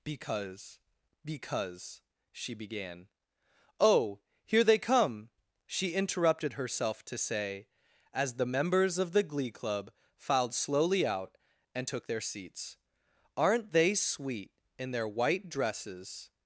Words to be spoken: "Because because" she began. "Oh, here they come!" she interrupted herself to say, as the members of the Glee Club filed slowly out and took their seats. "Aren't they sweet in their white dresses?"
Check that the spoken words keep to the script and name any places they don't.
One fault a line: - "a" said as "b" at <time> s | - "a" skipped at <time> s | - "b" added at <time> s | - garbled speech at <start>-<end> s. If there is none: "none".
none